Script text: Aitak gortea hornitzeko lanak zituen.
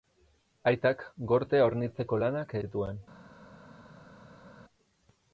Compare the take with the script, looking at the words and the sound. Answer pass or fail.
pass